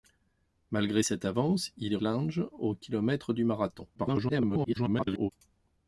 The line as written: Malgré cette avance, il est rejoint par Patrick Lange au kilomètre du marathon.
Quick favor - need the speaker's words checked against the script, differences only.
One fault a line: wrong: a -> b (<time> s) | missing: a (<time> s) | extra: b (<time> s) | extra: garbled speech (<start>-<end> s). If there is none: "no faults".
missing: rejoint par Patrick (2.0 s)
extra: garbled speech (3.9-5.3 s)